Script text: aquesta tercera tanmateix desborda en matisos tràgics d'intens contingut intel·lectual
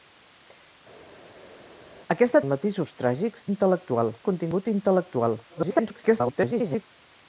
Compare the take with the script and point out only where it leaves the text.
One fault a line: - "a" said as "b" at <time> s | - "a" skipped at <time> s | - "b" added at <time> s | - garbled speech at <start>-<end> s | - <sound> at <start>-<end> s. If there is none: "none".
- "tercera tanmateix desborda" skipped at 2.4 s
- "d'intens" said as "intel·lectual" at 3.5 s
- garbled speech at 5.5-6.9 s